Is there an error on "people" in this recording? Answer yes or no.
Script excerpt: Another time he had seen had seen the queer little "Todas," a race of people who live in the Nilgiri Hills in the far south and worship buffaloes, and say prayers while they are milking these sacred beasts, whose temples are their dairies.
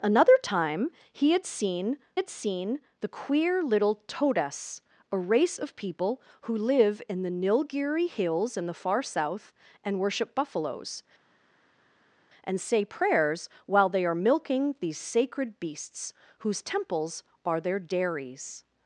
no